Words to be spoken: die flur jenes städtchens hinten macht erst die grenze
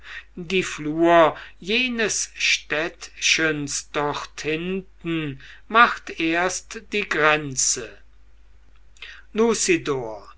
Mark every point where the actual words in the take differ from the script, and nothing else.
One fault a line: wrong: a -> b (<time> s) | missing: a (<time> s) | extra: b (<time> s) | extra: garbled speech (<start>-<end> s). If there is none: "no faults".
extra: dort (3.9 s)